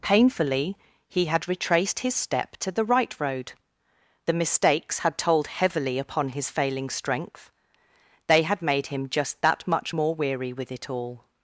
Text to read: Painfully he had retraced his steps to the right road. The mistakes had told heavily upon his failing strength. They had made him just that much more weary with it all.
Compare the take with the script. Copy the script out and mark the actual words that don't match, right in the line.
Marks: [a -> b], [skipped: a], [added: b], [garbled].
Painfully he had retraced his [steps -> step] to the right road. The mistakes had told heavily upon his failing strength. They had made him just that much more weary with it all.